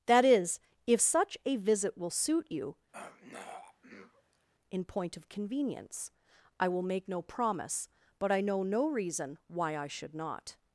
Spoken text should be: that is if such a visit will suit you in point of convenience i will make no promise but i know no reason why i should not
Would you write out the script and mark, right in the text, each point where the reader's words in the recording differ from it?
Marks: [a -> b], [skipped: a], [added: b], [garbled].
that is if such a visit will suit you in point of convenience i will make no promise but i know no reason why i should not